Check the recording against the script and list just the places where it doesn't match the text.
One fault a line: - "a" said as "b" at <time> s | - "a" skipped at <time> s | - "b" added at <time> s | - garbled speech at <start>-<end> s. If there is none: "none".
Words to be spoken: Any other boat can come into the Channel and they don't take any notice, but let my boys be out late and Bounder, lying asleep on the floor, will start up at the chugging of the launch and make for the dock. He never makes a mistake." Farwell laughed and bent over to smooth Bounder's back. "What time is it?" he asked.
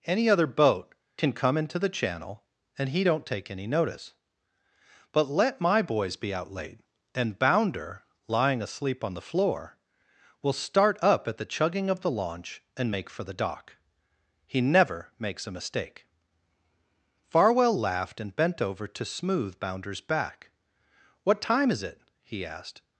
- "they" said as "he" at 2.9 s